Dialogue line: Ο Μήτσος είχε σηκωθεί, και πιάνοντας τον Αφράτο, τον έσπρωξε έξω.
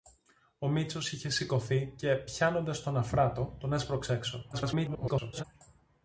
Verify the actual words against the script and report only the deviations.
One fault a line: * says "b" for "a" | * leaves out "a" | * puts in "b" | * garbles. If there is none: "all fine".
* garbles